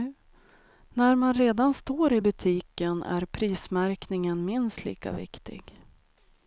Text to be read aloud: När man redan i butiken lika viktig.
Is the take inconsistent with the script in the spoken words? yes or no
yes